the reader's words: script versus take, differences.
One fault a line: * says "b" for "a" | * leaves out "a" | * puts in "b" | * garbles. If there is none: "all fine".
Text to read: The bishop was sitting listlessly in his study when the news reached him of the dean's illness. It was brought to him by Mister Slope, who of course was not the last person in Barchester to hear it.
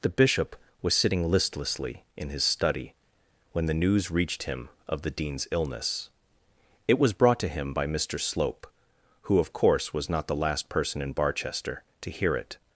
all fine